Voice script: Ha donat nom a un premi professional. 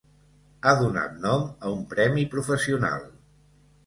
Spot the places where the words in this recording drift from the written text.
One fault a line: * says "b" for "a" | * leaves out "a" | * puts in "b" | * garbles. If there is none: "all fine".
all fine